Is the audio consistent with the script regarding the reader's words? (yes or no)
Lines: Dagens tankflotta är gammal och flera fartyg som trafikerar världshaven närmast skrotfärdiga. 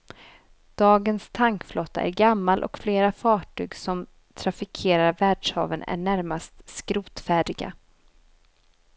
no